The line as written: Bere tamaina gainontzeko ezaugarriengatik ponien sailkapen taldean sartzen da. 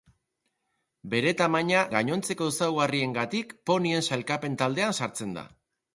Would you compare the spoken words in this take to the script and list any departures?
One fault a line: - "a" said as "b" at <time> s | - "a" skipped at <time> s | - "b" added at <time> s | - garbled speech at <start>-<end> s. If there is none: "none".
none